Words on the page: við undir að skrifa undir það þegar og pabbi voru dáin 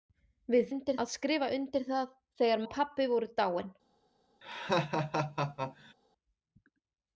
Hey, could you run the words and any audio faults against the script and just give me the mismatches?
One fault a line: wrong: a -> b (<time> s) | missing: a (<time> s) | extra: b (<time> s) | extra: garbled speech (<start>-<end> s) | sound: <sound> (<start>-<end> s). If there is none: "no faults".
sound: laugh (4.4-5.9 s)